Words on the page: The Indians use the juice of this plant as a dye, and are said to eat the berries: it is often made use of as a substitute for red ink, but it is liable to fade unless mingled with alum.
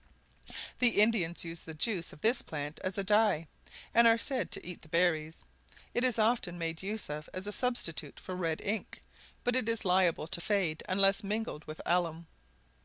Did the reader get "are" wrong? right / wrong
right